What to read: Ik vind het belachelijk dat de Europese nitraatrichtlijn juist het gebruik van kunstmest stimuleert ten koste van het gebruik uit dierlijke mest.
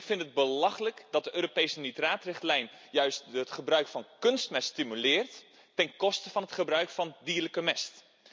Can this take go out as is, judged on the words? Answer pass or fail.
fail